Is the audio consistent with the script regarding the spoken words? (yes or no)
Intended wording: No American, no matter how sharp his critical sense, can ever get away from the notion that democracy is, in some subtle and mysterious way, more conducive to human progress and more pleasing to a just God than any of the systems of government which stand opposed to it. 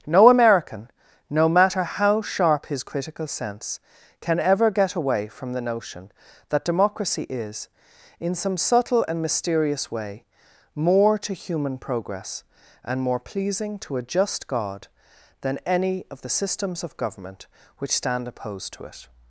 no